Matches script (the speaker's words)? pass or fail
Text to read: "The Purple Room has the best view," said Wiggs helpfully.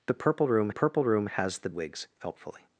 fail